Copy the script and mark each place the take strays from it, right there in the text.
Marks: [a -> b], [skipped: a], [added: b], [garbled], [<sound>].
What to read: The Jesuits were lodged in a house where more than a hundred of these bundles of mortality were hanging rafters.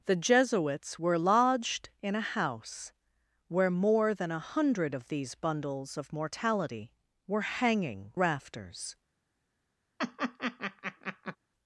The Jesuits were lodged in a house where more than a hundred of these bundles of mortality were hanging rafters. [laugh]